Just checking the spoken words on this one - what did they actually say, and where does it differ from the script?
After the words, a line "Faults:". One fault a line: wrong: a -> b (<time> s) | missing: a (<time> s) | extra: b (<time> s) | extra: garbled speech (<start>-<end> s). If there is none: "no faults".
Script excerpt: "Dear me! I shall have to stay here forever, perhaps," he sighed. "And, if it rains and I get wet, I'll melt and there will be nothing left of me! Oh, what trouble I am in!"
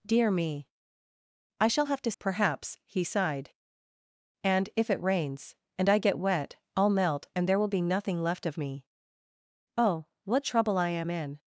"Dear me! I shall have to perhaps," he sighed. "And, if it rains and I get wet, I'll melt and there will be nothing left of me! Oh, what trouble I am in!"
Faults:
missing: stay here forever (2.1 s)